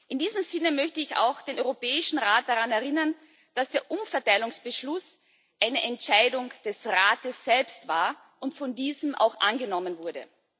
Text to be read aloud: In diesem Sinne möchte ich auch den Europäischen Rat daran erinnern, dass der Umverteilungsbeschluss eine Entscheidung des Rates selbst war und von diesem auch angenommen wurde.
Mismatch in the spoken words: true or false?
false